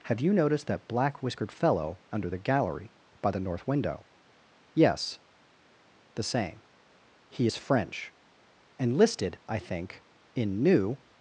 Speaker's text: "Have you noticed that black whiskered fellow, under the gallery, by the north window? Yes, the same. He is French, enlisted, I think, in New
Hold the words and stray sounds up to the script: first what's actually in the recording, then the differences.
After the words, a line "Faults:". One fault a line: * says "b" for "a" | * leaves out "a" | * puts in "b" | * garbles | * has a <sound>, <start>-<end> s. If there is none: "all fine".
"Have you noticed that black whiskered fellow, under the gallery, by the north window? Yes, the same. He is French, enlisted, I think, in New
Faults:
all fine